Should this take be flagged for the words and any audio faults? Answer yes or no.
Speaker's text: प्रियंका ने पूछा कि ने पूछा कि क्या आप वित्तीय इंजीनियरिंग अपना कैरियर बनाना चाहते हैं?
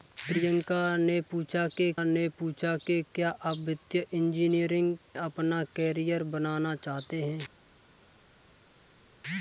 no